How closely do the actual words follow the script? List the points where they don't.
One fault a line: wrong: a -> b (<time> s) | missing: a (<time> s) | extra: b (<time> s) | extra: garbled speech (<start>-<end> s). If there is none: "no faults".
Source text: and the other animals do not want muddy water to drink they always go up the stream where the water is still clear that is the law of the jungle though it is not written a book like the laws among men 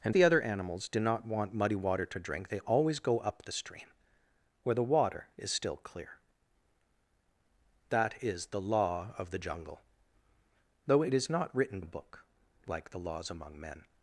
no faults